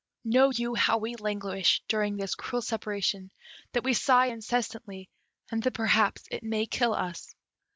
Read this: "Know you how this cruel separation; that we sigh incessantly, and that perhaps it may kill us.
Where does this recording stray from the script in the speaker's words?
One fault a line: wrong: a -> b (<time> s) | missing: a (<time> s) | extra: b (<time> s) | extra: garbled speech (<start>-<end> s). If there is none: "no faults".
extra: we languish during (1.0 s)